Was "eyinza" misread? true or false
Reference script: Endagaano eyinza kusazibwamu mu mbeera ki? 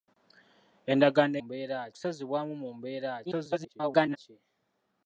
true